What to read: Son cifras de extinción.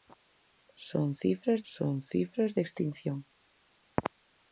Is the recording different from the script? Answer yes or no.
yes